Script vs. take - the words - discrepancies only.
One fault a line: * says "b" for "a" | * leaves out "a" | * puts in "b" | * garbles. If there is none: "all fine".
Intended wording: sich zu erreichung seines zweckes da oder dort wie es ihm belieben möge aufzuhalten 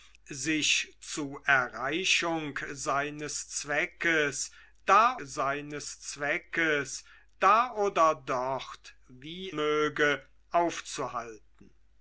* puts in "seines zweckes da"
* leaves out "es ihm belieben"